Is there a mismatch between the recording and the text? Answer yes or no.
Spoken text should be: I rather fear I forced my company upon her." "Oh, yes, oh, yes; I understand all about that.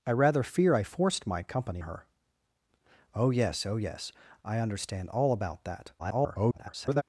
yes